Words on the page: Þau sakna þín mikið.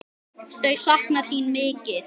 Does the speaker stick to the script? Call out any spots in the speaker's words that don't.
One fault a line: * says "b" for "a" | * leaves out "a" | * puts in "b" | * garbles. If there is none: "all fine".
all fine